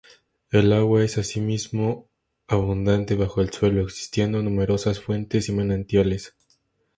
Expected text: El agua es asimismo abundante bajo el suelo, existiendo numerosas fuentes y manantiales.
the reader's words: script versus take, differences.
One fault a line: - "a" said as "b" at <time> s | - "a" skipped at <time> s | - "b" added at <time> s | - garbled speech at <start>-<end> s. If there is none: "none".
none